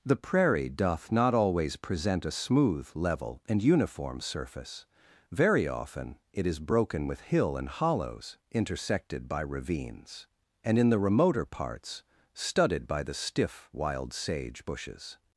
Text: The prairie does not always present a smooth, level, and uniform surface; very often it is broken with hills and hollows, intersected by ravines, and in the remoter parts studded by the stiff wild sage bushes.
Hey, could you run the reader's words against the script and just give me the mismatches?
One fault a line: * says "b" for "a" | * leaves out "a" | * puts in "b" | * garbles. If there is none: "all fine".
* says "doth" for "does"
* says "hill" for "hills"